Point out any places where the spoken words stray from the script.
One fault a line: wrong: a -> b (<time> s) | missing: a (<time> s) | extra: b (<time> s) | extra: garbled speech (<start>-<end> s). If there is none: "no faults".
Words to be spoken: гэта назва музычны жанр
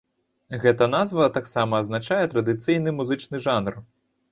extra: таксама азначае традыцыйны (1.4 s)